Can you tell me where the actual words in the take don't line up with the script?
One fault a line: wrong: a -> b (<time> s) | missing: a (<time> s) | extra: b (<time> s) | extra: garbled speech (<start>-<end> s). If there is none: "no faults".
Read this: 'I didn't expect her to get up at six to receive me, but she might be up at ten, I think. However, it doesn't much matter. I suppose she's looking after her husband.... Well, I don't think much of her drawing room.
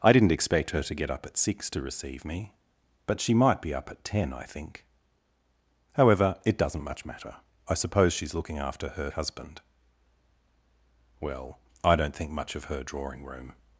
no faults